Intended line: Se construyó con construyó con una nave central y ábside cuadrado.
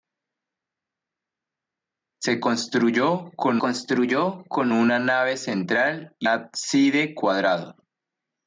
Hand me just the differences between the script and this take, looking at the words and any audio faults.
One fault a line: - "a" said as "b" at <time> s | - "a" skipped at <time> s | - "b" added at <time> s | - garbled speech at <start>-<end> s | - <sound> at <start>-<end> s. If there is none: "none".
none